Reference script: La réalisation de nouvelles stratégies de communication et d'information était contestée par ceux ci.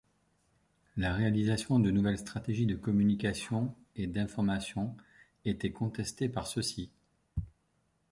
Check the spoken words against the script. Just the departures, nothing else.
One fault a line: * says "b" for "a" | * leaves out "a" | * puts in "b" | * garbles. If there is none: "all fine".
all fine